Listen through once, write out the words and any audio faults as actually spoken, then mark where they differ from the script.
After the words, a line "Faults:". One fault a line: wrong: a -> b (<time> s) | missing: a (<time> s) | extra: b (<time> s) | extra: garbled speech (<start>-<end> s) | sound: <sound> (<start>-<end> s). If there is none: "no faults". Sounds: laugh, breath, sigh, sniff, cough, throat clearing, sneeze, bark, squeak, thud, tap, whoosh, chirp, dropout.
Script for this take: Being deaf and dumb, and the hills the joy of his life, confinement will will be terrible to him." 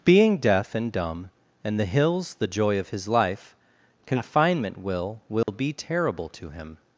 Being deaf and dumb, and the hills the joy of his life, confinement will will be terrible to him."
Faults:
sound: dropout (5.4-5.5 s)